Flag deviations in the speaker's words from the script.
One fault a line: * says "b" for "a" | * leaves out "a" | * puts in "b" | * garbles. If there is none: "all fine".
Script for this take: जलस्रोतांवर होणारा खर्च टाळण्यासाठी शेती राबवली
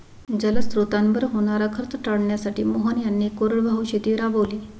* puts in "मोहन यांनी कोरडवाहू"